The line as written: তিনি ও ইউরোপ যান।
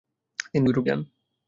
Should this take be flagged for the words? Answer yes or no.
no